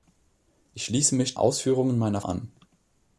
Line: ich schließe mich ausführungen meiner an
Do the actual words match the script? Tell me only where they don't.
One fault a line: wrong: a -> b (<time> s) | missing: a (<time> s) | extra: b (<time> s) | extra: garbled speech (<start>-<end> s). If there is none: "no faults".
no faults